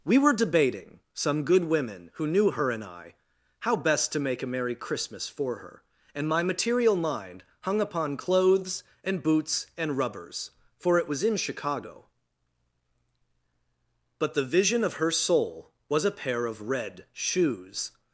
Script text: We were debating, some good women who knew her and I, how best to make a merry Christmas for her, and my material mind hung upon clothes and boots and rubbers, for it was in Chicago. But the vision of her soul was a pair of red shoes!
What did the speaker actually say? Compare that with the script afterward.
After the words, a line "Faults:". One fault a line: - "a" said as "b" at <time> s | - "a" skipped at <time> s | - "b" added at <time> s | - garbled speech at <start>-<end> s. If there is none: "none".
We were debating, some good women who knew her and I, how best to make a merry Christmas for her, and my material mind hung upon clothes and boots and rubbers, for it was in Chicago. But the vision of her soul was a pair of red shoes!
Faults:
none